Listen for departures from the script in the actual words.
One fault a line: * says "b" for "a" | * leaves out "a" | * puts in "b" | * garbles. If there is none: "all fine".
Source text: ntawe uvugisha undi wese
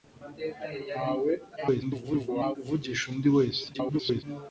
* garbles
* garbles